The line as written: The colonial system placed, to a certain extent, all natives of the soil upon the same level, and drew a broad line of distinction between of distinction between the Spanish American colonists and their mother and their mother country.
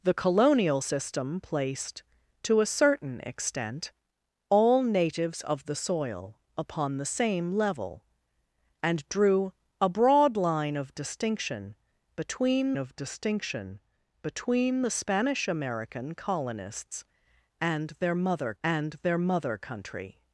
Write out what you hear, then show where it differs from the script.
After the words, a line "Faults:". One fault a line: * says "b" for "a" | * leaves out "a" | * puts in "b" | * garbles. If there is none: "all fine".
The colonial system placed, to a certain extent, all natives of the soil upon the same level, and drew a broad line of distinction between of distinction between the Spanish American colonists and their mother and their mother country.
Faults:
all fine